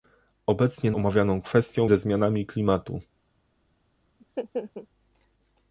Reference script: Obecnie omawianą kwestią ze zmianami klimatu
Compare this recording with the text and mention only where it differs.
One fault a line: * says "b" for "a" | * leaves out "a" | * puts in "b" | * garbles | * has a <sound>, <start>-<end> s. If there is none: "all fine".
* has a laugh, 4.2-4.9 s